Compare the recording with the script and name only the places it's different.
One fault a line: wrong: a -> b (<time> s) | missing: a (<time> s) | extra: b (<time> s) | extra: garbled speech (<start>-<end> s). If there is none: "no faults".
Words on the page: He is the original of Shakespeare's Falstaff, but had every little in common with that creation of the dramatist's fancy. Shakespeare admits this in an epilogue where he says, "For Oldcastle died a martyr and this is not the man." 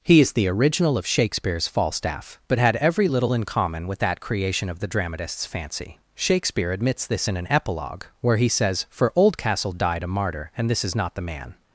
no faults